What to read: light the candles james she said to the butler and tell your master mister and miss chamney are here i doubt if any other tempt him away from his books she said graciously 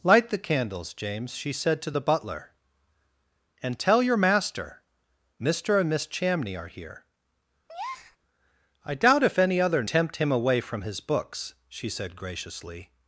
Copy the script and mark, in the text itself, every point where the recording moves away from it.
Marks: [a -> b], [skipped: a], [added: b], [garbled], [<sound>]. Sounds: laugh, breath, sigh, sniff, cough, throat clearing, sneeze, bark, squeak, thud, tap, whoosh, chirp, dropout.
light the candles james she said to the butler and tell your master mister and miss chamney are here [breath] i doubt if any other tempt him away from his books she said graciously